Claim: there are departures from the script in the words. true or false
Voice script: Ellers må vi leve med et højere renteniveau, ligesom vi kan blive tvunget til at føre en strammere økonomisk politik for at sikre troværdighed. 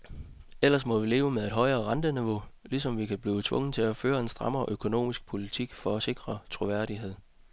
false